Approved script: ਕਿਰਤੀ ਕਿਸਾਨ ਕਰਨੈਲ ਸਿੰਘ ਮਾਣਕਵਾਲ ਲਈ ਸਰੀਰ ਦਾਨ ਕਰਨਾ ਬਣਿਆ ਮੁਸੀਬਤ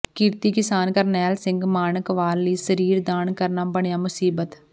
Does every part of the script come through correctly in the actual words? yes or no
yes